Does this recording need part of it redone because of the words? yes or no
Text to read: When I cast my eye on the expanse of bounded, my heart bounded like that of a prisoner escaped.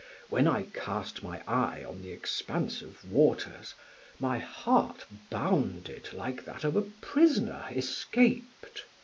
yes